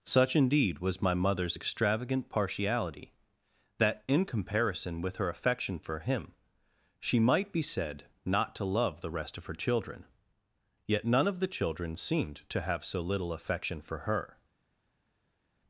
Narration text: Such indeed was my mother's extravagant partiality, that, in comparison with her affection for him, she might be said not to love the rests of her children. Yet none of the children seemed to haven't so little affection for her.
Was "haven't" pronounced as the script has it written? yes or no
no